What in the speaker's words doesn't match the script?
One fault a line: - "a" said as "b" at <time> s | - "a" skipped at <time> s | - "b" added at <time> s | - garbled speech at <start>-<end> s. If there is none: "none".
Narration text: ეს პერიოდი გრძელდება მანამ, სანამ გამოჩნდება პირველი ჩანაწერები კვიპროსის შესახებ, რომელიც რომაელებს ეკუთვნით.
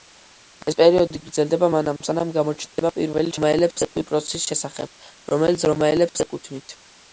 - "ჩანაწერები" said as "რომაელებს" at 3.4 s